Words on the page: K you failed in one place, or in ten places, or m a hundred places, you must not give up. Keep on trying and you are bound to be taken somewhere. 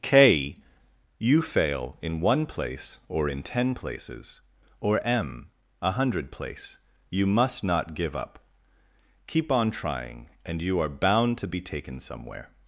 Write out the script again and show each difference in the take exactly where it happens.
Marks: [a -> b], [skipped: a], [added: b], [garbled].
K you [failed -> fail] in one place, or in ten places, or m a hundred [places, -> place] you must not give up. Keep on trying and you are bound to be taken somewhere.